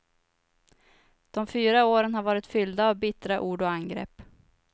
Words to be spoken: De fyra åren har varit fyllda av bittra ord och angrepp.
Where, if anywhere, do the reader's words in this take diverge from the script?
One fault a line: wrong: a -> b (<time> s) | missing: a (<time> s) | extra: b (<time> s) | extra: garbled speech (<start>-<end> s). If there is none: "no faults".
no faults